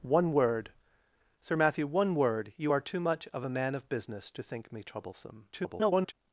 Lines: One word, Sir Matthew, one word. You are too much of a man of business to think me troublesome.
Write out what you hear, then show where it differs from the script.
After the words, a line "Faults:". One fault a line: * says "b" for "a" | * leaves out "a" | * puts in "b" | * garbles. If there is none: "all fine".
One word, Sir Matthew, one word. You are too much of a man of business to think me troublesome. [garbled]
Faults:
* garbles